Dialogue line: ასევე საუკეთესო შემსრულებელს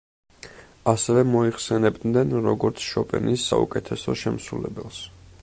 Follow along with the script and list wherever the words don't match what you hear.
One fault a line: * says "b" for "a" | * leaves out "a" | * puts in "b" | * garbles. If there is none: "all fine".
* puts in "მოიხსენებდნენ როგორც შოპენის"